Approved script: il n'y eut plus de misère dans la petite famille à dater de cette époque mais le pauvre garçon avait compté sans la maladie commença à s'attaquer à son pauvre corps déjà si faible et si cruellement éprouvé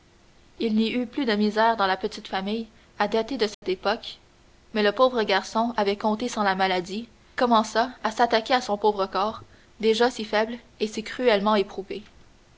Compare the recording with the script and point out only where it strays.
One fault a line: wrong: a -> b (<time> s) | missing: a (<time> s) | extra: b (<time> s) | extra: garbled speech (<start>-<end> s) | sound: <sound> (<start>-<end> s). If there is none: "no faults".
sound: dropout (3.5-3.6 s)